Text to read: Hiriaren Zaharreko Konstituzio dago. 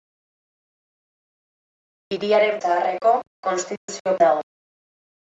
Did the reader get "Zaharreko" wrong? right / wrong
right